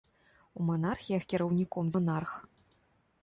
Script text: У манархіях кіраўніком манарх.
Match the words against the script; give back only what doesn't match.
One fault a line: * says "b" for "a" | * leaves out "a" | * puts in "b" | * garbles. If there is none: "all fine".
all fine